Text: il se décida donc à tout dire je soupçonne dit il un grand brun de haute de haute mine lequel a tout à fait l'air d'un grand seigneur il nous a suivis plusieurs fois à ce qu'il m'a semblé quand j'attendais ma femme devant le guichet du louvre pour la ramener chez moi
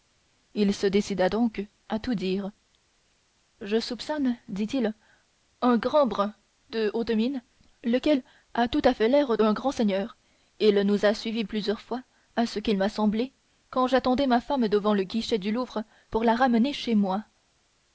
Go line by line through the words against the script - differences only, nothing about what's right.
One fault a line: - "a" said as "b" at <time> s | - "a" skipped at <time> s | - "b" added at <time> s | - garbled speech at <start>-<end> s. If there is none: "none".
- "de haute" skipped at 7.1 s